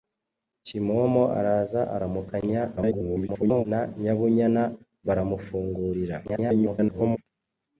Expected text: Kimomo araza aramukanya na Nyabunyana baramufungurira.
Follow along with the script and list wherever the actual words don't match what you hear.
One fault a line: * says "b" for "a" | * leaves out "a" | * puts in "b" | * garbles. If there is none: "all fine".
* garbles
* garbles